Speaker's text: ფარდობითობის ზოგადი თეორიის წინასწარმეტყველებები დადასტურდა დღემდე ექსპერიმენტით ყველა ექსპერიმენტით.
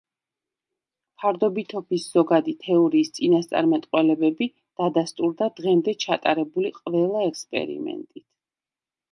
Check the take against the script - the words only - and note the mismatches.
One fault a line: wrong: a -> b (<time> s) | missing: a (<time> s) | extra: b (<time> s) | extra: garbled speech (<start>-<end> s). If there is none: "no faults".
wrong: ექსპერიმენტით -> ჩატარებული (6.1 s)